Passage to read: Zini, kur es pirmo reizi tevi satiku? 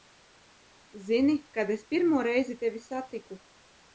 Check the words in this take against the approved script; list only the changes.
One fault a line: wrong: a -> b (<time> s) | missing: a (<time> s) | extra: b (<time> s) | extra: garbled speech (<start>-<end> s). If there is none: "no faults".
wrong: kur -> kad (1.6 s)